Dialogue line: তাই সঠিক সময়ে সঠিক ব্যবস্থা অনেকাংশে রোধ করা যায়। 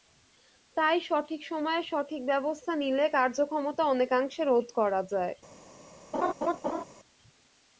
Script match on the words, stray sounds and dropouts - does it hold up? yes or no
no